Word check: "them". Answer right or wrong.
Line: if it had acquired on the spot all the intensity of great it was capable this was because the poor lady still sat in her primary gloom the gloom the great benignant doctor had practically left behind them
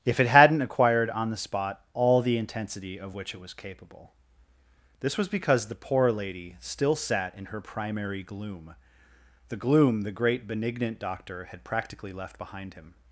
wrong